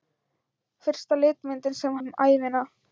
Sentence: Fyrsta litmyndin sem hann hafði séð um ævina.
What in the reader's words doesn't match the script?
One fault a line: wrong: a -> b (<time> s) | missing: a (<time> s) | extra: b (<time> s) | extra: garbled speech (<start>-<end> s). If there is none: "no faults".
missing: hann hafði séð (2.0 s)